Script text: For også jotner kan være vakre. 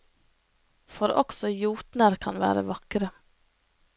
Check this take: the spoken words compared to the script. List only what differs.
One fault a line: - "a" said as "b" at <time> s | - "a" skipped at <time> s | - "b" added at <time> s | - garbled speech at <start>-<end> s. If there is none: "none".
none